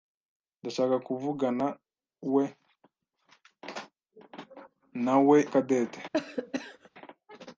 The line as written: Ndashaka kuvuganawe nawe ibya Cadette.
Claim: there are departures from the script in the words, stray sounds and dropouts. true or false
true